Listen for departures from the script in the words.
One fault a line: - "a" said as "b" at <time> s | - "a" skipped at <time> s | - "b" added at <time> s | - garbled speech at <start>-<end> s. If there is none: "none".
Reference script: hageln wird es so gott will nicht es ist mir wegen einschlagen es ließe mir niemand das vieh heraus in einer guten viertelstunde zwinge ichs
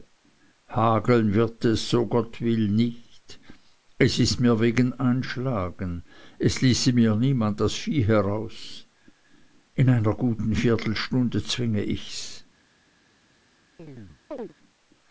none